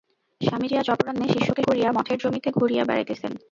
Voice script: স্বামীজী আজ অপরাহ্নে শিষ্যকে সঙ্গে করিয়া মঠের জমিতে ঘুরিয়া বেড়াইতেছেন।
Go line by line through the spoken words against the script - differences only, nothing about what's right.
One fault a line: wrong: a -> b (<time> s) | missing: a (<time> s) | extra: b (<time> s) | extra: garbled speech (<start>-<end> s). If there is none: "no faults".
missing: সঙ্গে (1.6 s)